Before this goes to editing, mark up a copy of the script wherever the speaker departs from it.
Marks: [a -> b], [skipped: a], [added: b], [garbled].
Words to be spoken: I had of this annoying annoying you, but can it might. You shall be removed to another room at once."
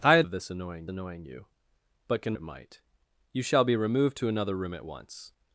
I had of this annoying annoying you, but can it might. You shall be removed to another room at once."